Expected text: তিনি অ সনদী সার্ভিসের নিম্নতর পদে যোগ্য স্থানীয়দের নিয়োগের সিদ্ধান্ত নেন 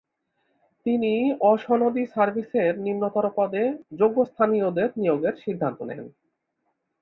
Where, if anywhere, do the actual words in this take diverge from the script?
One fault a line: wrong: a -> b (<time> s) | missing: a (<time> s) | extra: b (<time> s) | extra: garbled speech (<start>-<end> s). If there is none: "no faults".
no faults